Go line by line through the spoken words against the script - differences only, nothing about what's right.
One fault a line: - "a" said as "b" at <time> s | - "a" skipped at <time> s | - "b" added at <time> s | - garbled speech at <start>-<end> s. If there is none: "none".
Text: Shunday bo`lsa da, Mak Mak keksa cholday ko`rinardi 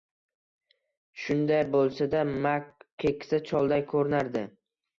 - "Mak" skipped at 2.7 s